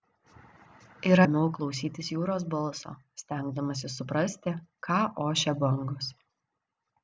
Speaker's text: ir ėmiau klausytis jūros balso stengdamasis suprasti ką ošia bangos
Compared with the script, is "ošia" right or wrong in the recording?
right